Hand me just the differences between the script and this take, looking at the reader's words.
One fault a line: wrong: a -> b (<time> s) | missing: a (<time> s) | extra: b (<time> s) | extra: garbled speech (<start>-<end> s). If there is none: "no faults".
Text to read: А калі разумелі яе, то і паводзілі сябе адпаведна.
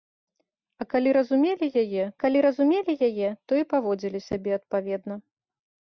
extra: калі разумелі яе (2.2 s)